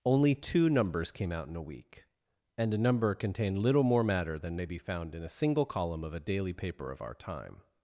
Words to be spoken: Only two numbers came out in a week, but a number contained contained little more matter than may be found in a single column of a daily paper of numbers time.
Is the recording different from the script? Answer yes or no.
yes